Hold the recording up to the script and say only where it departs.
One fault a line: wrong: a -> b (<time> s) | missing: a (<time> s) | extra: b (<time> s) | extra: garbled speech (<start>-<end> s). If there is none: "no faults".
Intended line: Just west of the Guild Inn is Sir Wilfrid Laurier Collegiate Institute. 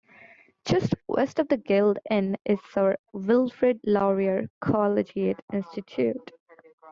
no faults